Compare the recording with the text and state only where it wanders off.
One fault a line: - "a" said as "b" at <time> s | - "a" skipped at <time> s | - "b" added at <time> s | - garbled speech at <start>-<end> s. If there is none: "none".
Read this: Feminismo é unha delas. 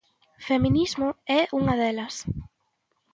none